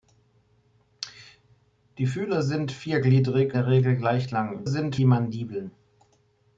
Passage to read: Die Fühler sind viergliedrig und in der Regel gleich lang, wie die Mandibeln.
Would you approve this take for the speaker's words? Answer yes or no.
no